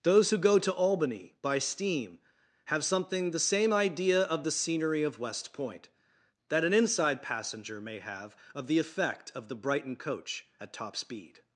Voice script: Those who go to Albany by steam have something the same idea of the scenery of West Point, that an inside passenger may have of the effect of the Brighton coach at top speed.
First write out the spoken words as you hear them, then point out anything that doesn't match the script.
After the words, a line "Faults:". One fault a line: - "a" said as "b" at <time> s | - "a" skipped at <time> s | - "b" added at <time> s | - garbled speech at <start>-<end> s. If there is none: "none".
Those who go to Albany by steam have something the same idea of the scenery of West Point, that an inside passenger may have of the effect of the Brighton coach at top speed.
Faults:
none